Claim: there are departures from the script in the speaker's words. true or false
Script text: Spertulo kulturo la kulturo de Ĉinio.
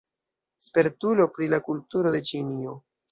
true